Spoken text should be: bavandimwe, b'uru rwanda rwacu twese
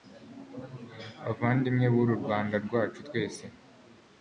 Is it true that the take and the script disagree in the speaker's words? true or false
false